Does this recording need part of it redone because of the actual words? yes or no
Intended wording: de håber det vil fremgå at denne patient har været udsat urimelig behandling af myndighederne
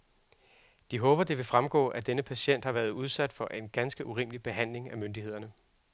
yes